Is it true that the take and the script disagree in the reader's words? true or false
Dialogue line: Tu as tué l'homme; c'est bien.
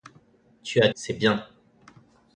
true